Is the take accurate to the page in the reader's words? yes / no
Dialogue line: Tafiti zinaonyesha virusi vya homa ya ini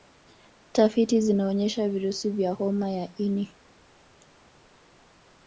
yes